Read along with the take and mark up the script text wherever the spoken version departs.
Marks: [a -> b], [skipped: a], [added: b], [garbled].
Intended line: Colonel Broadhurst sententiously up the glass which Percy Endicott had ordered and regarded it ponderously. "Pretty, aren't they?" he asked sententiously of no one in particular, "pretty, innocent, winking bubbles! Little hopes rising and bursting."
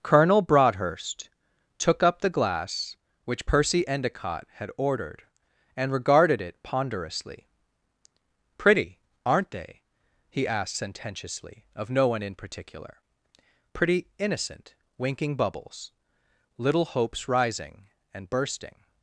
Colonel Broadhurst [sententiously -> took] up the glass which Percy Endicott had ordered and regarded it ponderously. "Pretty, aren't they?" he asked sententiously of no one in particular, "pretty, innocent, winking bubbles! Little hopes rising and bursting."